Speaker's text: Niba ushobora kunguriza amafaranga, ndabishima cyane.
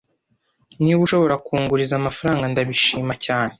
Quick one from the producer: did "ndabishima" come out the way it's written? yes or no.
yes